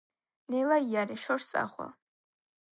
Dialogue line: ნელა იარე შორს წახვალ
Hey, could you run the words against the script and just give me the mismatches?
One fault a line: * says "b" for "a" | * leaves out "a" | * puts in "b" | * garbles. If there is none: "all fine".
all fine